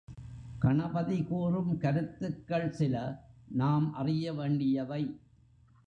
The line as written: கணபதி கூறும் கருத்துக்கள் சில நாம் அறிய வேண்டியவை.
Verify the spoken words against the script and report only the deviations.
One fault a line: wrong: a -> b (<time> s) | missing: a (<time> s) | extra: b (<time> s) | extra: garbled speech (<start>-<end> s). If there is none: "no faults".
no faults